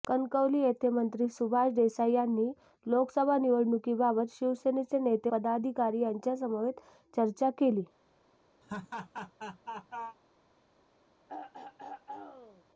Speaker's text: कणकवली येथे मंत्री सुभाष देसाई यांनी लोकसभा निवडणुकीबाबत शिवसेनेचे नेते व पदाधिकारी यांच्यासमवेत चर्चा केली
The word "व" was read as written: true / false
false